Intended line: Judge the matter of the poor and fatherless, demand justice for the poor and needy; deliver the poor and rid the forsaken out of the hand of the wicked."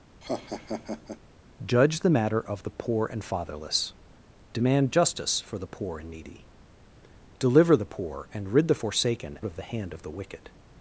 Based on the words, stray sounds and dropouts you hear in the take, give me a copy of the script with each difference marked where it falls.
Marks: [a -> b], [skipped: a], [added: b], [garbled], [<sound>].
[laugh] Judge the matter of the poor and fatherless, demand justice for the poor and needy; deliver the poor and rid the forsaken [skipped: out] of the hand of the wicked."